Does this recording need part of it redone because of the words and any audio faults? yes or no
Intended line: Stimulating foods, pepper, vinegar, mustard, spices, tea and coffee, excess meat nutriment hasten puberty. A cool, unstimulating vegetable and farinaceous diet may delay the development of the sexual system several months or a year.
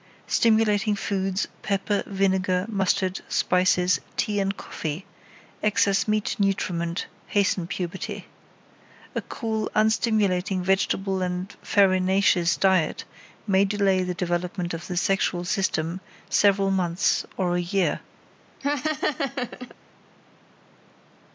yes